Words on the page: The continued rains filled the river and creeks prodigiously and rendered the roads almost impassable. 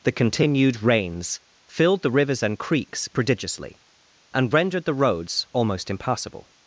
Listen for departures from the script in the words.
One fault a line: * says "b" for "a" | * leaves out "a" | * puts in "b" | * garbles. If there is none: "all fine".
* says "rivers" for "river"